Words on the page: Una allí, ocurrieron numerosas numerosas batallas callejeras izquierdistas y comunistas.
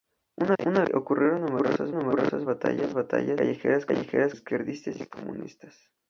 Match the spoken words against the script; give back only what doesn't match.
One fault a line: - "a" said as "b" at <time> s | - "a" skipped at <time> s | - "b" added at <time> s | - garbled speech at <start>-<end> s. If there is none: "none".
none